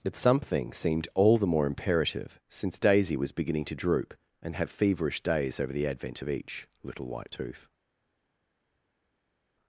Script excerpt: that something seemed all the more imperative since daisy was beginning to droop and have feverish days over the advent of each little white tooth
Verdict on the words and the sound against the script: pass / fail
fail